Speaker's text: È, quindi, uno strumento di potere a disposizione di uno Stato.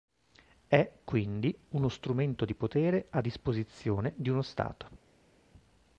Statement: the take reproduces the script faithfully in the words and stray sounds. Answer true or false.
true